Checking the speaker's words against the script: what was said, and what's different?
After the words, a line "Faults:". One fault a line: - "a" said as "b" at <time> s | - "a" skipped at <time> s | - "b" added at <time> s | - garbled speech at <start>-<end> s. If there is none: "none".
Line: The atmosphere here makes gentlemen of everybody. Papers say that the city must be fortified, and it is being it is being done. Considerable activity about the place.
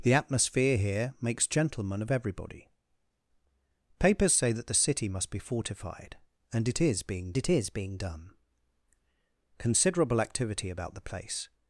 The atmosphere here makes gentlemen of everybody. Papers say that the city must be fortified, and it is being it is being done. Considerable activity about the place.
Faults:
none